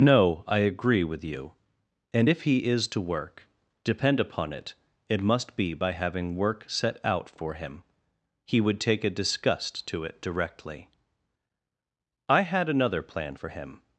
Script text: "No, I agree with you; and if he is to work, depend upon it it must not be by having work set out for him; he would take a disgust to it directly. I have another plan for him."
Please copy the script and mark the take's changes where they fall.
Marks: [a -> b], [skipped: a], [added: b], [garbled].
"No, I agree with you; and if he is to work, depend upon it it must [skipped: not] be by having work set out for him; he would take a disgust to it directly. I [have -> had] another plan for him."